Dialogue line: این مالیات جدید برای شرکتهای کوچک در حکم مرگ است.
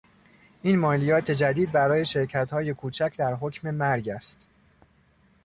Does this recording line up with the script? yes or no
yes